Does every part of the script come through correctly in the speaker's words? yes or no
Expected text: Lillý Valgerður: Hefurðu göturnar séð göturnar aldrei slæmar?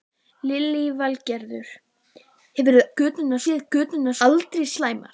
yes